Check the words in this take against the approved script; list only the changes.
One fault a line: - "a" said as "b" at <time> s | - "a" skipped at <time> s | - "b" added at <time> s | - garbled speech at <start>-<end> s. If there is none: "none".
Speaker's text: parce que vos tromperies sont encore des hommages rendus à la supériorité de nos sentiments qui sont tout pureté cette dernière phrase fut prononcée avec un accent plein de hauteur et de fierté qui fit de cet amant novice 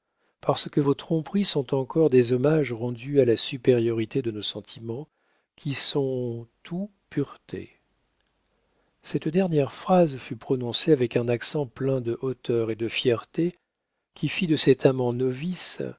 none